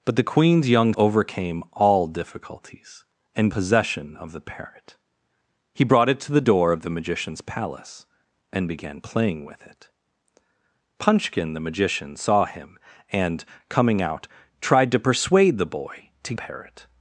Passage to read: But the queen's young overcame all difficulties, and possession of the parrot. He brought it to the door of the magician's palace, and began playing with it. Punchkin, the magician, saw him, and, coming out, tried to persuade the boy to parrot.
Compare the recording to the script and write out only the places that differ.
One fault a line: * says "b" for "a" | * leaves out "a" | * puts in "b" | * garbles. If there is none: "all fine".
all fine